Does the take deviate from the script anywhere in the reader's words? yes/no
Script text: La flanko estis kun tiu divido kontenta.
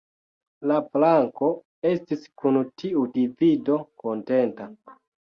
no